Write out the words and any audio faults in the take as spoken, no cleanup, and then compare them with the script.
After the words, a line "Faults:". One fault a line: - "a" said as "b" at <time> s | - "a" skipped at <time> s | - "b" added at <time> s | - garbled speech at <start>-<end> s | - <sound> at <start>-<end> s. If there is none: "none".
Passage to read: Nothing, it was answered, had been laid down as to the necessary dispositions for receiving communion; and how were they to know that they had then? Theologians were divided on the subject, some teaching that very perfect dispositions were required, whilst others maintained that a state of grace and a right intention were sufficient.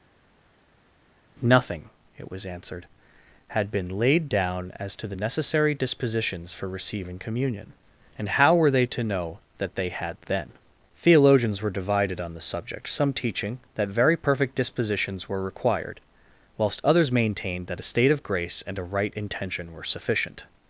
Nothing, it was answered, had been laid down as to the necessary dispositions for receiving communion; and how were they to know that they had then? Theologians were divided on the subject, some teaching that very perfect dispositions were required, whilst others maintained that a state of grace and a right intention were sufficient.
Faults:
none